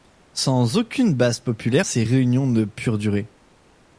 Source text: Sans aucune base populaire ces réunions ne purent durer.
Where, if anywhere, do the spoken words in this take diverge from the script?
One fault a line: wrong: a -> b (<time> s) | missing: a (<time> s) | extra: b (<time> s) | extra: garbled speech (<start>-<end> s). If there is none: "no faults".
no faults